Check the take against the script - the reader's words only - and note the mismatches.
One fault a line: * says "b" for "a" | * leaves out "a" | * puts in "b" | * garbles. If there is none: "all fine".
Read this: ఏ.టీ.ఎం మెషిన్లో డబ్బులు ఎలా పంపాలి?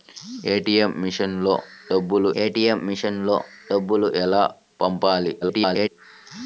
* puts in "ఏ.టీ.ఎం మెషిన్లో డబ్బులు"
* garbles